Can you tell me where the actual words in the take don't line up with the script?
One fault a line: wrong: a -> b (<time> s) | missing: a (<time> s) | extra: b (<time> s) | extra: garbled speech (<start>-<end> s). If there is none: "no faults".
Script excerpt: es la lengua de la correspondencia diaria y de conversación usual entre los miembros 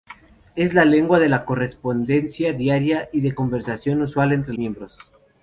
missing: los (4.5 s)